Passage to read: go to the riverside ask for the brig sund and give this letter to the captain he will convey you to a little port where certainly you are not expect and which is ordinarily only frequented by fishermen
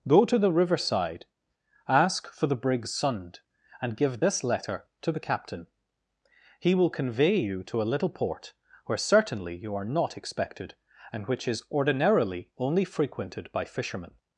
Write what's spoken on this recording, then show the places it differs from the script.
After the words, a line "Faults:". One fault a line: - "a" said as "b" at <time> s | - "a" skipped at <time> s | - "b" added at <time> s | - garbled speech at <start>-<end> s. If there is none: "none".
go to the riverside ask for the brig sund and give this letter to the captain he will convey you to a little port where certainly you are not expected and which is ordinarily only frequented by fishermen
Faults:
- "expect" said as "expected" at 10.2 s